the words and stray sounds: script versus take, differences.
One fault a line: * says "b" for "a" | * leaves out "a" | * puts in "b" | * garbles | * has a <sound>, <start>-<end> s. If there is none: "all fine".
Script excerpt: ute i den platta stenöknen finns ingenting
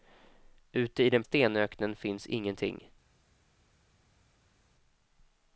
* leaves out "platta"